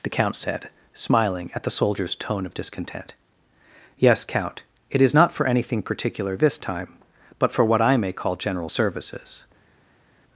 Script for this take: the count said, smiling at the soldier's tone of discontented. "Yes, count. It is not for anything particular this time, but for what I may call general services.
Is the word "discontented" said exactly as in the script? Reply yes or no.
no